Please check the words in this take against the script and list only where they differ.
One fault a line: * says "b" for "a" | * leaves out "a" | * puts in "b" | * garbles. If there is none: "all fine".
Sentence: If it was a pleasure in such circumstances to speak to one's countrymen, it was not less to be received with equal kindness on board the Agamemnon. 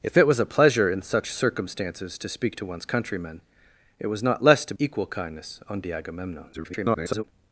* leaves out "be received with"
* leaves out "board"
* garbles